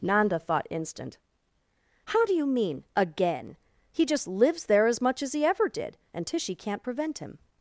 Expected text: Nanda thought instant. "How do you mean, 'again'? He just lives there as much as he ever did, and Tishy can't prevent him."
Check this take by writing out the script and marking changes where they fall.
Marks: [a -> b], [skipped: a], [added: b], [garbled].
Nanda thought instant. "How do you mean, 'again'? He just lives there as much as he ever did, and Tishy can't prevent him."